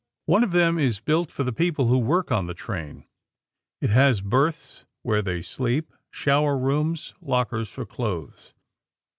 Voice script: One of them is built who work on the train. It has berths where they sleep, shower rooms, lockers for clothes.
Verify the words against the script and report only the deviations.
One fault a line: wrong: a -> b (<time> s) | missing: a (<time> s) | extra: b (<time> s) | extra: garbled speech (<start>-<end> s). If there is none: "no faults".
extra: for the people (1.3 s)